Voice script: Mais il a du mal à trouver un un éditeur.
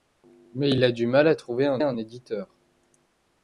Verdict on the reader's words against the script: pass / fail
pass